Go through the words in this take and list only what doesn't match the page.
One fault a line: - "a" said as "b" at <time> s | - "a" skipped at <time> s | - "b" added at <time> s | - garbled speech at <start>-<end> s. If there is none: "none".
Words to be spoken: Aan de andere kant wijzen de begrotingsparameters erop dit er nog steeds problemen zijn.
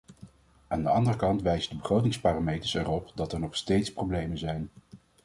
- "dit" said as "dat" at 3.1 s